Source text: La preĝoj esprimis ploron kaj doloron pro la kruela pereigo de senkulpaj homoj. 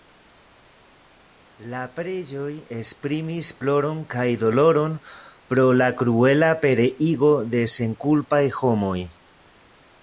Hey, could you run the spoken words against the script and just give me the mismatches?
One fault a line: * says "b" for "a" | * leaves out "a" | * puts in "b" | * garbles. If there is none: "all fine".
all fine